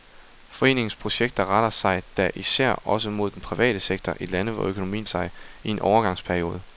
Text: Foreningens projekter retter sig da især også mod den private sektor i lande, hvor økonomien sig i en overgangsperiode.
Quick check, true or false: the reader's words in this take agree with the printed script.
true